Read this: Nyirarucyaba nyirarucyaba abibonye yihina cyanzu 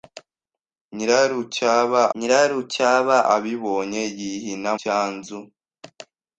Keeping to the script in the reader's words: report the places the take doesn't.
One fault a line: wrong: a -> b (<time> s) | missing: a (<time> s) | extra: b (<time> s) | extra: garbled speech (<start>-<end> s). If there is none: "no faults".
no faults